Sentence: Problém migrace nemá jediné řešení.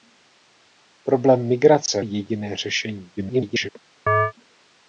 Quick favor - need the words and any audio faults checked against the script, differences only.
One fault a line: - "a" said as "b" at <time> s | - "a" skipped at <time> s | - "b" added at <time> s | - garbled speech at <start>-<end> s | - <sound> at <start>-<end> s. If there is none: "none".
- "nemá" skipped at 2.0 s
- garbled speech at 3.2-3.7 s
- chirp at 4.1-4.3 s